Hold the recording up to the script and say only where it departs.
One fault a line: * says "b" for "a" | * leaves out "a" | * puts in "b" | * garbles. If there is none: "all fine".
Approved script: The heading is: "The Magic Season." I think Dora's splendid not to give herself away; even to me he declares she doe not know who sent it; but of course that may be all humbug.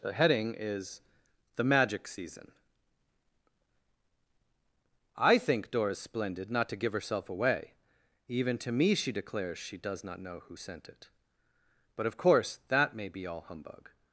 * says "she" for "he"
* says "does" for "doe"